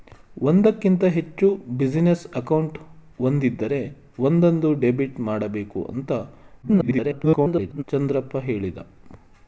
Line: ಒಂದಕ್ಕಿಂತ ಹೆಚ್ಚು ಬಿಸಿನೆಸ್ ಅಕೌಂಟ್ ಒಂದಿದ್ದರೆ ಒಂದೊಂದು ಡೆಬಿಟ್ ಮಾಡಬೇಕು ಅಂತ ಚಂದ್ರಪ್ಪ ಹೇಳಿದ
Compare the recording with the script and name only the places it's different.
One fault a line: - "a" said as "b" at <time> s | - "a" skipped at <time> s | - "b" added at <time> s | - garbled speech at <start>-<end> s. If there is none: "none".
- garbled speech at 6.6-7.8 s